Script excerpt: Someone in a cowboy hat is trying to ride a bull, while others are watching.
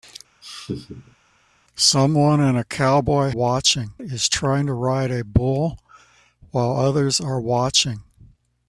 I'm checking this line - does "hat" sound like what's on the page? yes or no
no